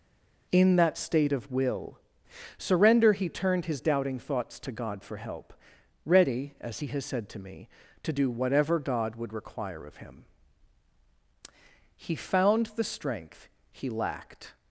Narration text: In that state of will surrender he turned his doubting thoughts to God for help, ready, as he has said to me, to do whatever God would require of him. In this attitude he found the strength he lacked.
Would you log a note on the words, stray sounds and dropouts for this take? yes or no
yes